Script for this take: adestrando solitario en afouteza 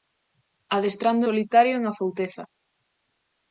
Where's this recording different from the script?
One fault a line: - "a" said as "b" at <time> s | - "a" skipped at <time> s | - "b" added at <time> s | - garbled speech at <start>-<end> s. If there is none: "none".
none